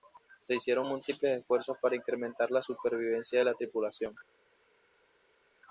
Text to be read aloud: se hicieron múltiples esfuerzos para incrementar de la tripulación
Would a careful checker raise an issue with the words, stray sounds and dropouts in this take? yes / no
yes